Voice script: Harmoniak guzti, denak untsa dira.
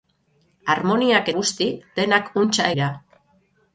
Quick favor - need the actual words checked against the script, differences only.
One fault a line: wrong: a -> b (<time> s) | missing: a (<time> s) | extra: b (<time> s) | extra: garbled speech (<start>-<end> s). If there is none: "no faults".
no faults